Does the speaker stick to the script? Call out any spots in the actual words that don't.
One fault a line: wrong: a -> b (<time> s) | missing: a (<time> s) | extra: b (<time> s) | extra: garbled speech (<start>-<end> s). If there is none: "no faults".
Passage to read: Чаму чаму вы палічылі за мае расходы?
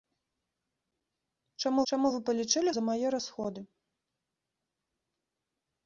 no faults